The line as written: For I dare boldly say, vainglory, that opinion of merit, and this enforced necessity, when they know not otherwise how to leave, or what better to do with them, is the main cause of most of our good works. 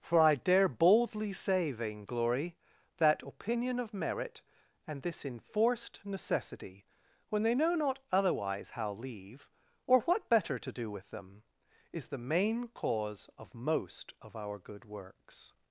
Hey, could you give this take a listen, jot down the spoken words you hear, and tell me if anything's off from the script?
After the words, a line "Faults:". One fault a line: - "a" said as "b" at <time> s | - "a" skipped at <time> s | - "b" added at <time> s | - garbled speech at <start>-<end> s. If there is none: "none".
For I dare boldly say, vainglory, that opinion of merit, and this enforced necessity, when they know not otherwise how leave, or what better to do with them, is the main cause of most of our good works.
Faults:
- "to" skipped at 8.9 s